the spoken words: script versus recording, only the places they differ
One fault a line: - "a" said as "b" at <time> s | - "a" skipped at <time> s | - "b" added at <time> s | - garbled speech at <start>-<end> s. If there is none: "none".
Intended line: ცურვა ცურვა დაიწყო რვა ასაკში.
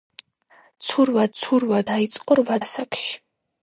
none